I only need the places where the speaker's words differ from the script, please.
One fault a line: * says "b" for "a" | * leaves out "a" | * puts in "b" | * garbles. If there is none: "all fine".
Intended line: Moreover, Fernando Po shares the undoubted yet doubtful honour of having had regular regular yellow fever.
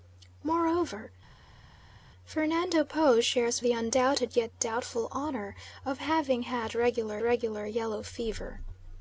all fine